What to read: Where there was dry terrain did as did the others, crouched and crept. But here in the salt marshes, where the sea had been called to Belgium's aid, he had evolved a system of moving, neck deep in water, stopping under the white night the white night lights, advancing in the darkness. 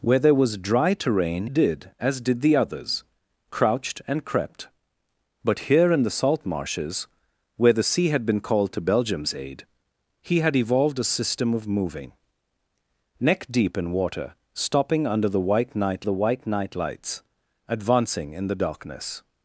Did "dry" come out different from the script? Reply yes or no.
no